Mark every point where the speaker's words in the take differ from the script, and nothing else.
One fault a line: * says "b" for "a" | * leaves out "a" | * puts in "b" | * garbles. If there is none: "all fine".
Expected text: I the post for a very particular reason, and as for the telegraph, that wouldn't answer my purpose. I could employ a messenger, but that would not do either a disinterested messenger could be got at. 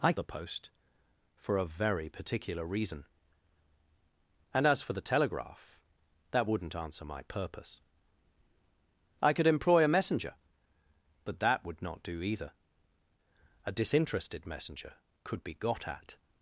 all fine